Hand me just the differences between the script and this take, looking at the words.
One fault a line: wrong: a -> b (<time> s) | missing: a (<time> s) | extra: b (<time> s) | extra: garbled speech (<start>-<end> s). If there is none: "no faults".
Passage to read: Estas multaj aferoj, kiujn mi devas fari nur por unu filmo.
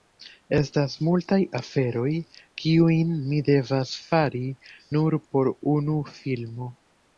no faults